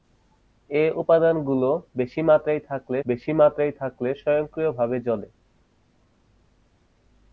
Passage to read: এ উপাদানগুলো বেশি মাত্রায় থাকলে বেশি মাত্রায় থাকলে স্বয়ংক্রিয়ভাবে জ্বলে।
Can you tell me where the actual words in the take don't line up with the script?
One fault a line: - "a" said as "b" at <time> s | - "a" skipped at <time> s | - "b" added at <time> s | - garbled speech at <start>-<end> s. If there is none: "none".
none